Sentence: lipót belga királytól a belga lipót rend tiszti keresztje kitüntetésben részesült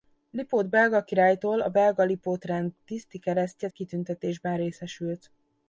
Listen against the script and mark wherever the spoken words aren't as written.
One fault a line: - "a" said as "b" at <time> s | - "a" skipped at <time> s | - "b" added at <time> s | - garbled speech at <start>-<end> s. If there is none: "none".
none